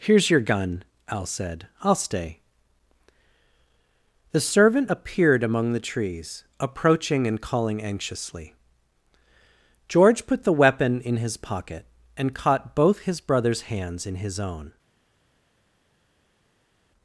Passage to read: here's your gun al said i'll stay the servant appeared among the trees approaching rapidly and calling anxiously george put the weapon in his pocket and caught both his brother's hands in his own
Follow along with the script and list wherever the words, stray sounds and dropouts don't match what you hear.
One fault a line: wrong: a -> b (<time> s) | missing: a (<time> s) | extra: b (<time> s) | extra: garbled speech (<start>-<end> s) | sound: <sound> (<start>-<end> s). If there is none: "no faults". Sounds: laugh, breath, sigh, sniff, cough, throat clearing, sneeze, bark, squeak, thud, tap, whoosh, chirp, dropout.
missing: rapidly (7.3 s)